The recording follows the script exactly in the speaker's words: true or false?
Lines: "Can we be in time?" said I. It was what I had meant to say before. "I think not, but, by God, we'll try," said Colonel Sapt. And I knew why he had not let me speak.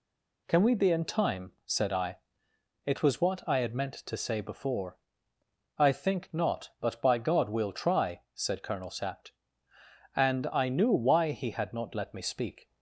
true